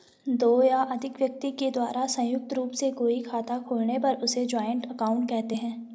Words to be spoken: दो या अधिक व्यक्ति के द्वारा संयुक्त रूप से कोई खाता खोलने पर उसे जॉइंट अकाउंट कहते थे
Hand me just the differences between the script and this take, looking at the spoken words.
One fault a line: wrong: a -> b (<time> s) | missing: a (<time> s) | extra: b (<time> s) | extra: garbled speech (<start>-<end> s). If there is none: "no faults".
wrong: थे -> हैं (5.5 s)